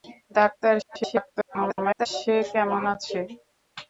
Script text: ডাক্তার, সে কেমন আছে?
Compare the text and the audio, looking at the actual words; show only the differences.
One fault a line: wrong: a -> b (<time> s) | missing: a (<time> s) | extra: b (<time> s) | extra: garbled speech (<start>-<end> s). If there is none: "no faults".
extra: garbled speech (0.8-2.1 s)